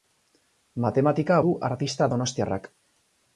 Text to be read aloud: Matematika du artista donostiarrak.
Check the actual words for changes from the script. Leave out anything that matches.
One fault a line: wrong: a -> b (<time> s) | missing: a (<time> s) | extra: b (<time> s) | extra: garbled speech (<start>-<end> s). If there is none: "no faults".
no faults